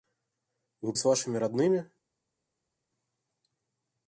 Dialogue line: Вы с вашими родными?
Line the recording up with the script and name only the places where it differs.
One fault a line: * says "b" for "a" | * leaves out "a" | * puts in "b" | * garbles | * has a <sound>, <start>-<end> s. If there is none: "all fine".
all fine